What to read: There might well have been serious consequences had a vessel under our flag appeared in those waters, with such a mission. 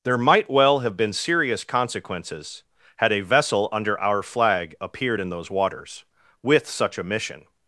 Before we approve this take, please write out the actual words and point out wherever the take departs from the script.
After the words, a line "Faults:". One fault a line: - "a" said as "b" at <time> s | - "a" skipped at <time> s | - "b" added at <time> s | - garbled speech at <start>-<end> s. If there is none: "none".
There might well have been serious consequences had a vessel under our flag appeared in those waters, with such a mission.
Faults:
none